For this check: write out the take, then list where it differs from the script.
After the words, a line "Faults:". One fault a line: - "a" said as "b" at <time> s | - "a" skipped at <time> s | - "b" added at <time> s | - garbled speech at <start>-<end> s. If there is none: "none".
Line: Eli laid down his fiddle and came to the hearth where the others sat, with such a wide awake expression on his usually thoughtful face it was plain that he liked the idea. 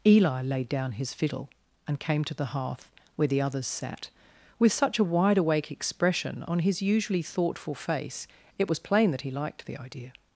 Eli laid down his fiddle and came to the hearth where the others sat, with such a wide awake expression on his usually thoughtful face it was plain that he liked the idea.
Faults:
none